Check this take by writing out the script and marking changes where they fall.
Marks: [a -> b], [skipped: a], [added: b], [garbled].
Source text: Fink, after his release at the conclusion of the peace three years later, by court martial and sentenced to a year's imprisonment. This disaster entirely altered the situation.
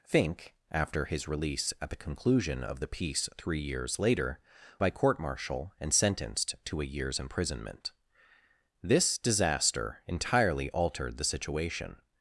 Fink, after his release at the conclusion of the peace three years later, by court martial and sentenced to a year's imprisonment. This disaster entirely altered the situation.